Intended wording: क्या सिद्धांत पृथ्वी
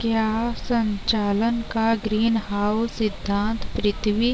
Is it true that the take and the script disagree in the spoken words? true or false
true